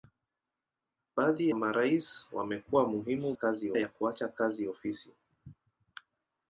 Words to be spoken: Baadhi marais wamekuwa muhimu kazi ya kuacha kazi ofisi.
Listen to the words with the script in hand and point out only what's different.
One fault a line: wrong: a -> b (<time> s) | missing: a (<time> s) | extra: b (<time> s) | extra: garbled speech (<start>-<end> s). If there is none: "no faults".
no faults